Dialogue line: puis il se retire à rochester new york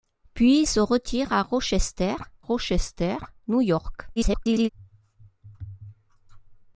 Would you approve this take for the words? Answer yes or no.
no